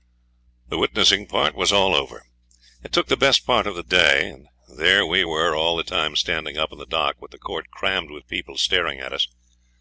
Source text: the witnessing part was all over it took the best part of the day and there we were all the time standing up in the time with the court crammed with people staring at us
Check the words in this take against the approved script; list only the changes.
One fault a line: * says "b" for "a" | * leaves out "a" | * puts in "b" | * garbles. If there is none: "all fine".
* says "dock" for "time"